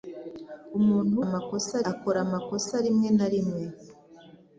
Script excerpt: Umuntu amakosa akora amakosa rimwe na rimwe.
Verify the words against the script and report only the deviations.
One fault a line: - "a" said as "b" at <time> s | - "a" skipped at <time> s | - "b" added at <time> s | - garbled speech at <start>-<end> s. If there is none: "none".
none